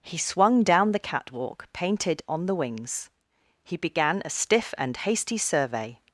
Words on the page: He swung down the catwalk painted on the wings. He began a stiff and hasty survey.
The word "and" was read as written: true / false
true